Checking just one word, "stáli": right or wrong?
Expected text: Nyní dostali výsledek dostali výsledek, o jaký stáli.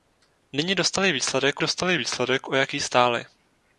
right